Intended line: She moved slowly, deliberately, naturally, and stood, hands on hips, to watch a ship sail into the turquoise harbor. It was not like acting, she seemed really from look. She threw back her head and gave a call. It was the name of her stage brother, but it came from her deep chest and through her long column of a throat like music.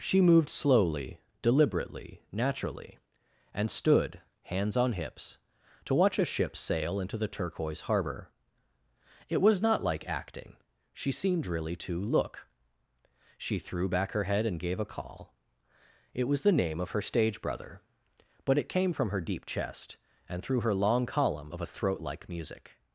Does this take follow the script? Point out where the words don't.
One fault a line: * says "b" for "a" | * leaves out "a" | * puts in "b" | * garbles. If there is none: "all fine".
* says "to" for "from"